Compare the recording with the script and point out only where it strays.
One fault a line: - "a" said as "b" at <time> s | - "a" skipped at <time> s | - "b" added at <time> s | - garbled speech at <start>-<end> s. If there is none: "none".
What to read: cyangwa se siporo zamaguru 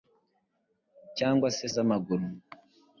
- "siporo" skipped at 1.6 s